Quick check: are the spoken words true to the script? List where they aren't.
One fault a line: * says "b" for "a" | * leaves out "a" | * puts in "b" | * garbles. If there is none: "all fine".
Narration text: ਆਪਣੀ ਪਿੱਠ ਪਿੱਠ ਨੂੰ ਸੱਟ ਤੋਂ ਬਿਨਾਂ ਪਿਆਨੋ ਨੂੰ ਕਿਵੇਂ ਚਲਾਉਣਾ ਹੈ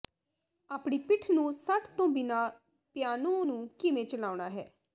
* leaves out "ਪਿੱਠ"